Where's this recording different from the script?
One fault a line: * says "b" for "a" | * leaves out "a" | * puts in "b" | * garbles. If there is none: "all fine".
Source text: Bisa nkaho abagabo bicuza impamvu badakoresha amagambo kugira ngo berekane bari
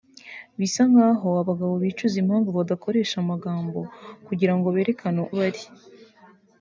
all fine